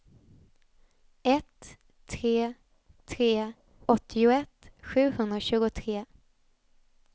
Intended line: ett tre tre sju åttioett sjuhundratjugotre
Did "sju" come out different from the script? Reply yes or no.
yes